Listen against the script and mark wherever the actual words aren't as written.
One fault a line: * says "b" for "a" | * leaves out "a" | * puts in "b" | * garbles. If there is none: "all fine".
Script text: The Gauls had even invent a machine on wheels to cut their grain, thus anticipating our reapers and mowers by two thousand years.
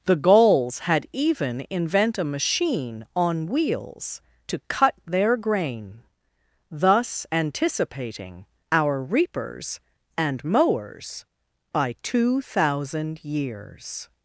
all fine